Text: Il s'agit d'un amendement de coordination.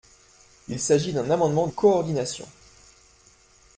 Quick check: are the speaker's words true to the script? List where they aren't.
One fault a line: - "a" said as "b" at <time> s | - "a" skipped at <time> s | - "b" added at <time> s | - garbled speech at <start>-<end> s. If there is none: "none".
- "de" skipped at 1.7 s